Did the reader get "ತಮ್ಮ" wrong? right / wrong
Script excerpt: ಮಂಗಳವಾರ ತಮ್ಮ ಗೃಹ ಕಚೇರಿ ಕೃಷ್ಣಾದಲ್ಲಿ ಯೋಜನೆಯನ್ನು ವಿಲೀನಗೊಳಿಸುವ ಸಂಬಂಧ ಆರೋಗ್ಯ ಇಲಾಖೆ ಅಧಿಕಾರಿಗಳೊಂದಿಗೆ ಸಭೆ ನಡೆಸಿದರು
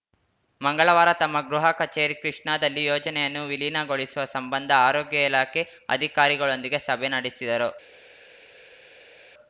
right